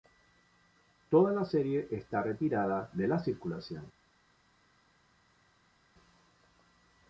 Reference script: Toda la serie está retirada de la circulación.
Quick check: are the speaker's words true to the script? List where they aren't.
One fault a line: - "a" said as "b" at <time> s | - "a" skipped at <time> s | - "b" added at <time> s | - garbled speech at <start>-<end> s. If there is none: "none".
none